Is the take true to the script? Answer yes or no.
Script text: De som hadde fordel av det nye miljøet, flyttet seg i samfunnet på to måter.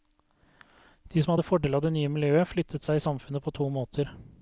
yes